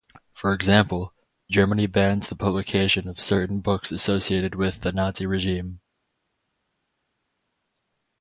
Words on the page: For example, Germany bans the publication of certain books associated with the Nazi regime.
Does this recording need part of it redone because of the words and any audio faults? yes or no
no